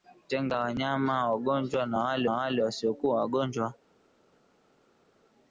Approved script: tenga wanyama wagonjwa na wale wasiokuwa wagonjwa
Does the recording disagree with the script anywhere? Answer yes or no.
yes